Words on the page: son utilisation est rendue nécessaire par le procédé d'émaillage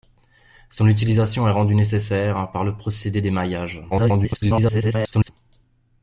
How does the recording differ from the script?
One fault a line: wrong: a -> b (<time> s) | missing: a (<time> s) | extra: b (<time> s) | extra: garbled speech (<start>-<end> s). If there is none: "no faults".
extra: garbled speech (3.9-5.3 s)